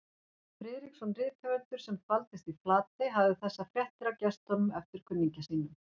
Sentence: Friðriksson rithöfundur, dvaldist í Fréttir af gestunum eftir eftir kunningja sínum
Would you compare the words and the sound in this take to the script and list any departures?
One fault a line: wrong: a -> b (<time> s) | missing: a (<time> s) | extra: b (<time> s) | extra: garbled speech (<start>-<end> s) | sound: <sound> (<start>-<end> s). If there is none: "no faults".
extra: sem (1.9 s)
extra: Flatey hafði þessar (2.6 s)
missing: eftir (5.1 s)